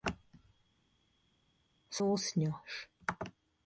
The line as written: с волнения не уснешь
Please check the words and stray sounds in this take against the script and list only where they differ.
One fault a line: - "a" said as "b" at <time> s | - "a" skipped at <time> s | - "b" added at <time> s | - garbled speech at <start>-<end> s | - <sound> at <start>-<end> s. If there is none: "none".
- "волнения не" skipped at 2.0 s